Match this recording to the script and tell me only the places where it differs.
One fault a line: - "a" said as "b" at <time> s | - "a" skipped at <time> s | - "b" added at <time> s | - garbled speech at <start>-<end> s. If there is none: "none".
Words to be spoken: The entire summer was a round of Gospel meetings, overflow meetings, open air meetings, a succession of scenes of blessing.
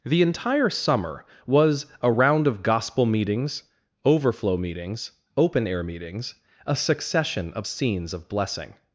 none